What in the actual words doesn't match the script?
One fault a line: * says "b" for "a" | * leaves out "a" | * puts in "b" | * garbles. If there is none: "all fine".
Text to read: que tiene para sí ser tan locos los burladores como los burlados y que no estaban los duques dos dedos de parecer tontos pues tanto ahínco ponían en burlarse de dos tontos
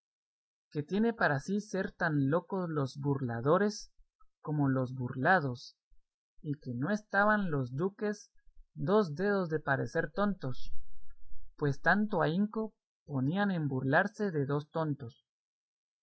all fine